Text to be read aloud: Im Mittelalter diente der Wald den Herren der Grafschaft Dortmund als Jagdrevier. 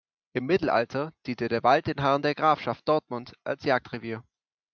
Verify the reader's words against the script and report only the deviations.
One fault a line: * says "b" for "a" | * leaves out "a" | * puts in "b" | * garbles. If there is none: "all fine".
all fine